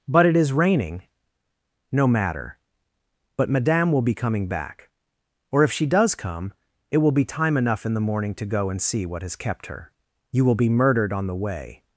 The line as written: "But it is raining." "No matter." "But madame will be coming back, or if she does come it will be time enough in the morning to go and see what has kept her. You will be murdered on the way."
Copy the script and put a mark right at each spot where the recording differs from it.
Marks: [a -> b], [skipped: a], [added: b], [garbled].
"But it is raining." "No matter." "But madame will be coming back, or if she does come it will be time enough in the morning to go and see what has kept her. You will be murdered on the way."